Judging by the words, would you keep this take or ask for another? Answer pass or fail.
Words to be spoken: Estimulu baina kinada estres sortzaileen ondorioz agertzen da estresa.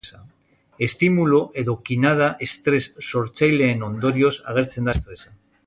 fail